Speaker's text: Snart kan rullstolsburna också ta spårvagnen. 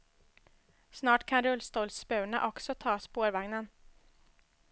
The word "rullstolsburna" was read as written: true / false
true